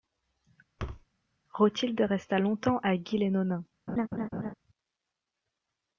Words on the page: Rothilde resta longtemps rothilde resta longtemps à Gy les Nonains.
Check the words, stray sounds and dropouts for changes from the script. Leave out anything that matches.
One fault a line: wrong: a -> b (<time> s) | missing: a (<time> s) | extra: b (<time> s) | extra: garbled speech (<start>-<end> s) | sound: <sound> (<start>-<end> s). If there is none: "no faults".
sound: thud (0.8-1.1 s)
missing: rothilde resta longtemps (2.8 s)
sound: laugh (3.9-4.5 s)